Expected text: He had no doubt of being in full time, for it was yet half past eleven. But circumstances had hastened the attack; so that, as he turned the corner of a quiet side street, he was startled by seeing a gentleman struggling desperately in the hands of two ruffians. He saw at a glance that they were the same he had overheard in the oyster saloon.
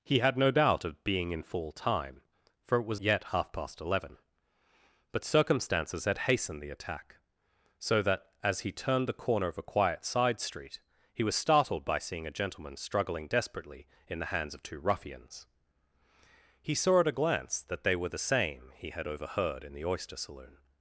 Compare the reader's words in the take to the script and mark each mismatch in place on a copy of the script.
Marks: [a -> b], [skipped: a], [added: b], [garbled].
He had no doubt of being in full time, for it was yet half past eleven. But circumstances had hastened the attack; so that, as he turned the corner of a quiet side street, he was startled by seeing a gentleman struggling desperately in the hands of two ruffians. He saw at a glance that they were the same he had overheard in the oyster saloon.